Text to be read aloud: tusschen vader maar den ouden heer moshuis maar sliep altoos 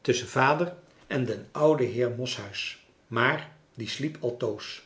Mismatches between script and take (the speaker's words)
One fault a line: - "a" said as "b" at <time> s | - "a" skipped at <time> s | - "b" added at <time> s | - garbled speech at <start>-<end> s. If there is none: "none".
- "maar" said as "en" at 1.1 s
- "die" added at 3.7 s